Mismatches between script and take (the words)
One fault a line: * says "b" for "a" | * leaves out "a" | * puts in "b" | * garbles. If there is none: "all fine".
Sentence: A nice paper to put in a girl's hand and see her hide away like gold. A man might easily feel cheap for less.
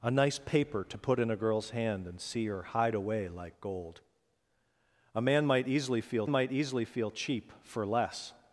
* puts in "might easily feel"